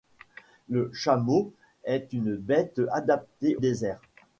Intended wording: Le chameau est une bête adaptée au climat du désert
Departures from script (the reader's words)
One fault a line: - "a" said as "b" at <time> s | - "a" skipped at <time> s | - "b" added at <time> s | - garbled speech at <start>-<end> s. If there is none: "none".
- "au climat du" skipped at 3.5 s